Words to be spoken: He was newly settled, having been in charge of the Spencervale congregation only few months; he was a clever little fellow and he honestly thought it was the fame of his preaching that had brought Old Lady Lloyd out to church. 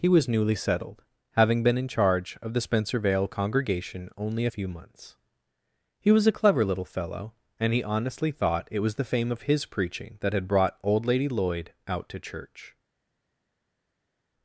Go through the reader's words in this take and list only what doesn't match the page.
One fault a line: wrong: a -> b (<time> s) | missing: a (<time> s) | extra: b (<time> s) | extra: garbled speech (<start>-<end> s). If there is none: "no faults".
no faults